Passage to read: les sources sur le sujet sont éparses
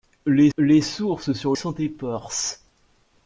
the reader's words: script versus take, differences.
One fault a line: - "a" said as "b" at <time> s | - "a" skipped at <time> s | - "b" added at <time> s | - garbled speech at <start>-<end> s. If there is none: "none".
- "les" added at 0.6 s
- "le sujet" skipped at 1.5 s